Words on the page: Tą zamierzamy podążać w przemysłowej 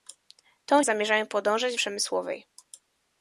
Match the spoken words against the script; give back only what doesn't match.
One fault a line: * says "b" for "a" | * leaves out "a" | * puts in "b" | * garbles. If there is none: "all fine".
all fine